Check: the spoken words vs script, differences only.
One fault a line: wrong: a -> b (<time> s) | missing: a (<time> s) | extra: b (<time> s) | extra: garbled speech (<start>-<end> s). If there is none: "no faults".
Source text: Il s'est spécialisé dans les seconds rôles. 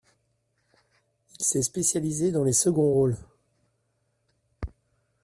no faults